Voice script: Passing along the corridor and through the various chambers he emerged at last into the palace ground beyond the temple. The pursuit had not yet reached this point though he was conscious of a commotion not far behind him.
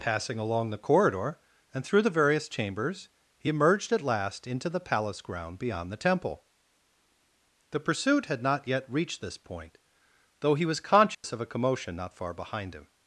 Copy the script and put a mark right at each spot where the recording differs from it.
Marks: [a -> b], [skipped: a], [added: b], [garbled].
Passing along the corridor and through the various chambers he emerged at last into the palace ground beyond the temple. The pursuit had not yet reached this point though he was conscious of a commotion not far behind him.